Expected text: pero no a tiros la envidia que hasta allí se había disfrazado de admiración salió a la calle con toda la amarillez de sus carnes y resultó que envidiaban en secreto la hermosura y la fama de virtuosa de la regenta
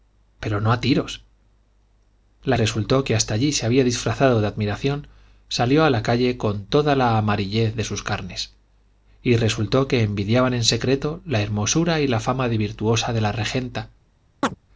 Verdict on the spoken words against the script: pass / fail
fail